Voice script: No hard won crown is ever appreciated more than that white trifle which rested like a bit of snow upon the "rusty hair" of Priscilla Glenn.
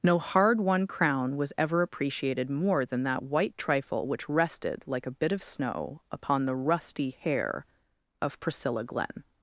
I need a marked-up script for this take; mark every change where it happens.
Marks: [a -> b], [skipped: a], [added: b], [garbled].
No hard won crown [is -> was] ever appreciated more than that white trifle which rested like a bit of snow upon the "rusty hair" of Priscilla Glenn.